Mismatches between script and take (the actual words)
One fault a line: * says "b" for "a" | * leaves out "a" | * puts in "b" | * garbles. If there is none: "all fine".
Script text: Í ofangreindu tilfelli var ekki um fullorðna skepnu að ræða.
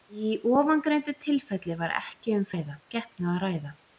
* says "ræða" for "fullorðna"